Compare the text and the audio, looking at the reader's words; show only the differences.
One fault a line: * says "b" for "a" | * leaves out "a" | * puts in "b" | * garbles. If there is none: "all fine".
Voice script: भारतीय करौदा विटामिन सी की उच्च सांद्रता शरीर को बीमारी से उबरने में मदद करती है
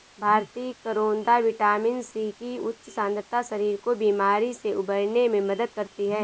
all fine